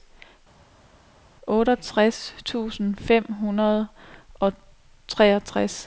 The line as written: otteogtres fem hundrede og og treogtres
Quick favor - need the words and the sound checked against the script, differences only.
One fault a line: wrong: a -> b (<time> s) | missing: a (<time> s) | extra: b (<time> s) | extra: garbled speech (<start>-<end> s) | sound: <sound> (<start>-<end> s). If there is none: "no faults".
extra: tusind (2.4 s)
missing: og (4.5 s)